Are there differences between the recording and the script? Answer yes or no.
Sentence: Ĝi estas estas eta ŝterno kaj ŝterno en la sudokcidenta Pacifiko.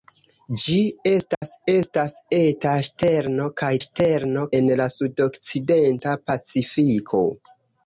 no